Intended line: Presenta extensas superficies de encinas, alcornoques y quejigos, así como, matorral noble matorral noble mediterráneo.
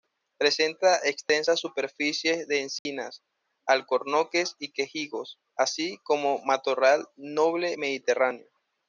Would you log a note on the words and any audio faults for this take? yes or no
yes